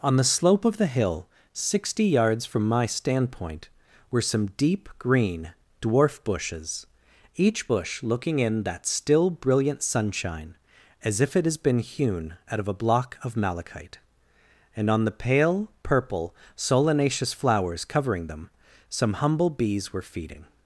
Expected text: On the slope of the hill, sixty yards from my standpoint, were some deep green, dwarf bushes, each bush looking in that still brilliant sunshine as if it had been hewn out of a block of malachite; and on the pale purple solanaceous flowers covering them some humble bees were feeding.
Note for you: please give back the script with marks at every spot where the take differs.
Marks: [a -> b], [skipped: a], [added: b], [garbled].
On the slope of the hill, sixty yards from my standpoint, were some deep green, dwarf bushes, each bush looking in that still brilliant sunshine as if it [had -> has] been hewn out of a block of malachite; and on the pale purple solanaceous flowers covering them some humble bees were feeding.